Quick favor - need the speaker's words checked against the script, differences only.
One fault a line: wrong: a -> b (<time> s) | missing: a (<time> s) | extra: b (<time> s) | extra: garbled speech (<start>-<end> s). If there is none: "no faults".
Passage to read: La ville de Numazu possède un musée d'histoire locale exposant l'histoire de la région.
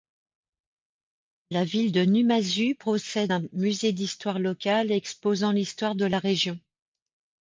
no faults